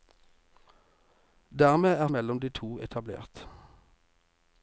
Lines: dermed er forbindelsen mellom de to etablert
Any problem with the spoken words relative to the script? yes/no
yes